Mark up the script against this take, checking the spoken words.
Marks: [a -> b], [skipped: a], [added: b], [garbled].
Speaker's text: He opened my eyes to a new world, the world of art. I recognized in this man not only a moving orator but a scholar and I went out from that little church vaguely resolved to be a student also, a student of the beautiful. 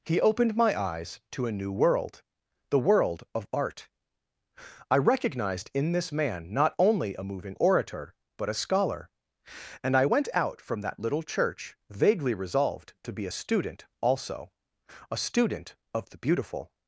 He opened my eyes to a new world, the world of art. I recognized in this man not only a moving orator but a scholar and I went out from that little church vaguely resolved to be a student also, a student of the beautiful.